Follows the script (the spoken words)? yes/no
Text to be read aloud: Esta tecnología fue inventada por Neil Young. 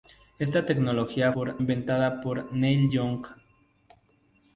no